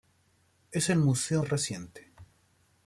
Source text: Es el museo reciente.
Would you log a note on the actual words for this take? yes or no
no